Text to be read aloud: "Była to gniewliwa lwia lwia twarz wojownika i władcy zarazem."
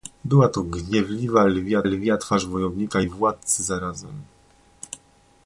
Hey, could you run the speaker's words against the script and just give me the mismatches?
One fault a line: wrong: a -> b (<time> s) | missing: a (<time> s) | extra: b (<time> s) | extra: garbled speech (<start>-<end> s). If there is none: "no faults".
no faults